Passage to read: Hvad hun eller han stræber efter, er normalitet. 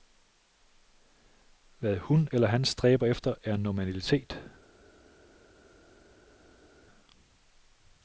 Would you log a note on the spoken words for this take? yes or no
no